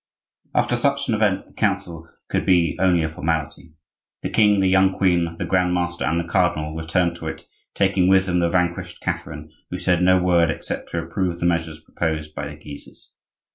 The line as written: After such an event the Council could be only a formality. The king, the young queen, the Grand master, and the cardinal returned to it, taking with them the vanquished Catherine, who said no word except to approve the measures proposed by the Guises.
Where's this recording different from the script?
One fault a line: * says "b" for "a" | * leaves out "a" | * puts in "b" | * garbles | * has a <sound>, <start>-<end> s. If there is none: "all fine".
all fine